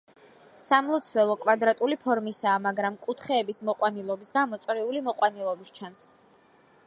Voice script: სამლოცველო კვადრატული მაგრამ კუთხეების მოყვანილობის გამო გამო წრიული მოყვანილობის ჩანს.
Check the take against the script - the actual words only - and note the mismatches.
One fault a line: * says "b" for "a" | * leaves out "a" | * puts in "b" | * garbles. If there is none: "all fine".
* puts in "ფორმისაა"
* leaves out "გამო"